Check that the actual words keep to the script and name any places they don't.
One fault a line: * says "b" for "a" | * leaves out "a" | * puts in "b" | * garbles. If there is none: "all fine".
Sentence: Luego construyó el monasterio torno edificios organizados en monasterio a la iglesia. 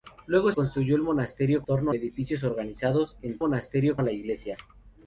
all fine